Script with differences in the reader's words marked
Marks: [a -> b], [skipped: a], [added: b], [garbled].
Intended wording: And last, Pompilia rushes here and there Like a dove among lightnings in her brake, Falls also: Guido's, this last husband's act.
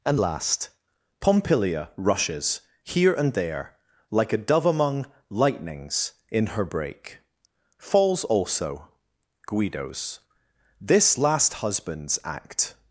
And last, Pompilia rushes here and there Like a dove among lightnings in her brake, Falls also: Guido's, this last husband's act.